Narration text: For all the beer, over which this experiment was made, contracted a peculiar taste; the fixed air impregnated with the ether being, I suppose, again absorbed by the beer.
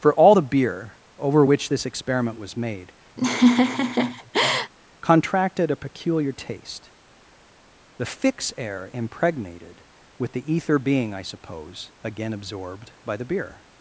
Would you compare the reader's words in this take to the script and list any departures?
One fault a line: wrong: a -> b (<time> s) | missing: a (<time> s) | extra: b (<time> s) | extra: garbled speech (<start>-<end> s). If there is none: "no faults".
wrong: fixed -> fix (8.0 s)